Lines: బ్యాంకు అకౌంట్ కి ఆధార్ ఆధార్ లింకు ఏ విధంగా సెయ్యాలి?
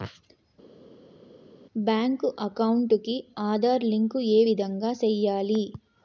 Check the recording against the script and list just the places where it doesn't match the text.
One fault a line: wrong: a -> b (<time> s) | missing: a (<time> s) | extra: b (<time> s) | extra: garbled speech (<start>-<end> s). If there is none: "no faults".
missing: ఆధార్ (3.8 s)